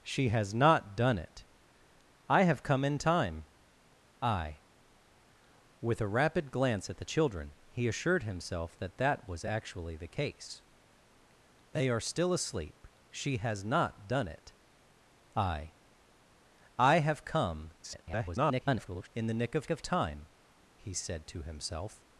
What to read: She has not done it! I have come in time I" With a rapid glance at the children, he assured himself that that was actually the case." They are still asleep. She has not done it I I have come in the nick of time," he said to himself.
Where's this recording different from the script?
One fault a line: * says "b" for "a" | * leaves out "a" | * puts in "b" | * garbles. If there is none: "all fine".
* garbles
* puts in "of"